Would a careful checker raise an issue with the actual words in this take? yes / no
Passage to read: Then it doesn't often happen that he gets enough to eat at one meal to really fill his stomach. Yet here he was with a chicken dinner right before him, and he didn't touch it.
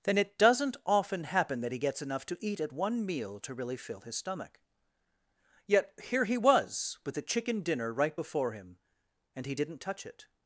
no